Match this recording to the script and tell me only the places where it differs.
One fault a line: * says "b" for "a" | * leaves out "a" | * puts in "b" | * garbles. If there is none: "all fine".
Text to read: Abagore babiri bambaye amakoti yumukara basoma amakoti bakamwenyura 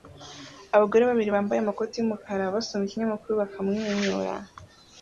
* says "ikinyamakuru" for "amakoti"